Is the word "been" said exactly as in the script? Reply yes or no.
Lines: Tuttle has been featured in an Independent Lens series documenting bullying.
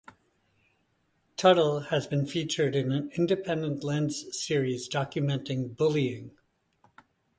yes